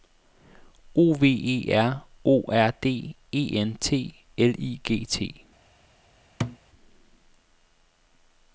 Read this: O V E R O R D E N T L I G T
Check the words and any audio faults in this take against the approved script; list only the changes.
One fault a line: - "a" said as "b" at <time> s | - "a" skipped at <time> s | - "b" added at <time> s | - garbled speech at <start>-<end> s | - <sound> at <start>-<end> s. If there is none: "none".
- thud at 6.4-6.6 s